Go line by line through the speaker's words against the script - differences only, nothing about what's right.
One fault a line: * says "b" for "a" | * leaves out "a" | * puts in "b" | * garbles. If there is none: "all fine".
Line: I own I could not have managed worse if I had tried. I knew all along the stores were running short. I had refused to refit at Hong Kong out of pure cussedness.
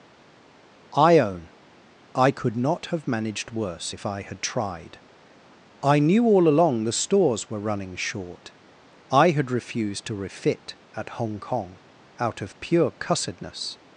all fine